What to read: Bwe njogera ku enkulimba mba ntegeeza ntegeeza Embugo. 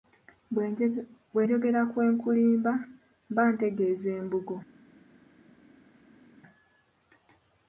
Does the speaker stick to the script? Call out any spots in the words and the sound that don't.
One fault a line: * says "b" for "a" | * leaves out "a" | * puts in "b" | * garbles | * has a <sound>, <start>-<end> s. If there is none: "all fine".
* leaves out "ntegeeza"